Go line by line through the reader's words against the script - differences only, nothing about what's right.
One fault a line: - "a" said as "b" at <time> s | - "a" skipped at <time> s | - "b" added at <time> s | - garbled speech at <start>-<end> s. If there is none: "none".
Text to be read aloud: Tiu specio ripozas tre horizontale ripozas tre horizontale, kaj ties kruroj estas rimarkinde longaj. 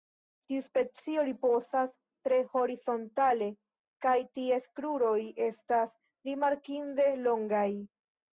- "ripozas tre horizontale" skipped at 3.5 s